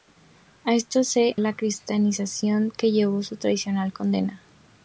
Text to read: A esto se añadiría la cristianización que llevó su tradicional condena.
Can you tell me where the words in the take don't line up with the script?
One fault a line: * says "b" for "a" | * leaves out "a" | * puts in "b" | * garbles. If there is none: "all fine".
* leaves out "añadiría"